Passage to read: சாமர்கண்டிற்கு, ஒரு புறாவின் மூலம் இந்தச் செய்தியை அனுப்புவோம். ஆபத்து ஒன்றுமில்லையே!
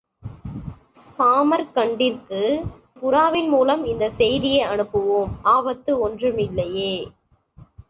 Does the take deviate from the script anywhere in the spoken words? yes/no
yes